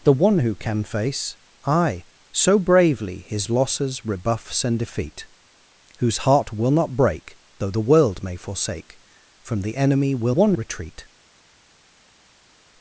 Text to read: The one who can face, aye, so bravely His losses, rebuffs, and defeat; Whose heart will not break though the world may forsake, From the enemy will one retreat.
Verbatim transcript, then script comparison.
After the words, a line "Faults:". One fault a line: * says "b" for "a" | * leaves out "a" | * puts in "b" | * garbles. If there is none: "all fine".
The one who can face, aye, so bravely His losses, rebuffs, and defeat; Whose heart will not break though the world may forsake, From the enemy will one retreat.
Faults:
all fine